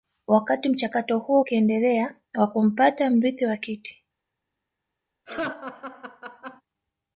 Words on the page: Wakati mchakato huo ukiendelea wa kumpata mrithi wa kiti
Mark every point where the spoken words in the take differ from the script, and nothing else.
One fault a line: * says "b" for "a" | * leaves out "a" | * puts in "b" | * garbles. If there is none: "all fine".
all fine